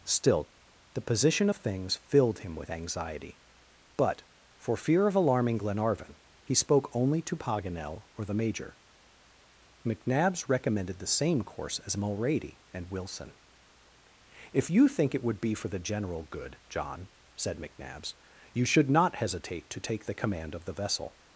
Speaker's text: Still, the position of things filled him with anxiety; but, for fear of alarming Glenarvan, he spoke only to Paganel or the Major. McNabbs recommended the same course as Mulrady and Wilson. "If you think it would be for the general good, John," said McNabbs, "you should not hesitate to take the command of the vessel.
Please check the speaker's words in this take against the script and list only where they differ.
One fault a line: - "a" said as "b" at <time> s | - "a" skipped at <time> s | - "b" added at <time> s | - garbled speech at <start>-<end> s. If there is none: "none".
none